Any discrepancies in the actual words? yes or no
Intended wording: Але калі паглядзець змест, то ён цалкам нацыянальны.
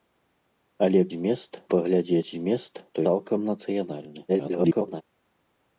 yes